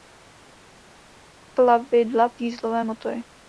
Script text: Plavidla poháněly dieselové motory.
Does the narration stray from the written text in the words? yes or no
yes